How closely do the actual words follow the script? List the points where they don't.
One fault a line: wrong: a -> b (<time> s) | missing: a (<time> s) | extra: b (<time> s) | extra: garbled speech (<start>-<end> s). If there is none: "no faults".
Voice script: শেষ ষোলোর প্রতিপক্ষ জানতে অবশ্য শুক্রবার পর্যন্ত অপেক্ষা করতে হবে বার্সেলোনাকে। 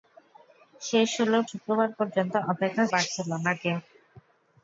missing: প্রতিপক্ষ জানতে অবশ্য (1.4 s)
missing: করতে হবে (2.8 s)